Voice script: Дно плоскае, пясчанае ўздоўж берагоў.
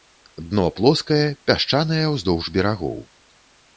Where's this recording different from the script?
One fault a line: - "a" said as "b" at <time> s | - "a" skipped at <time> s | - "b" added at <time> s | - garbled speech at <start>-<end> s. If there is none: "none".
none